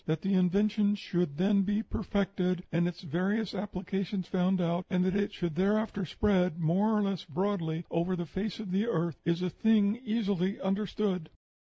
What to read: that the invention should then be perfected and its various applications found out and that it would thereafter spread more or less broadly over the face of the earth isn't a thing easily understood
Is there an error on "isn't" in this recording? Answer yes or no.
yes